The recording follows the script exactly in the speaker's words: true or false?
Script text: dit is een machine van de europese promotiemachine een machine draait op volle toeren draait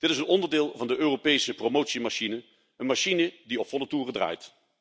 false